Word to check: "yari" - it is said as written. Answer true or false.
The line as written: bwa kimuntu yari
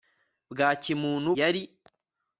true